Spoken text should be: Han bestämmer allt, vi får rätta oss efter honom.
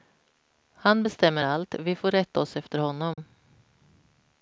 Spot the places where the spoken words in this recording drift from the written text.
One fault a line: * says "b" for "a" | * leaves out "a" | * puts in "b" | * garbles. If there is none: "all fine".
all fine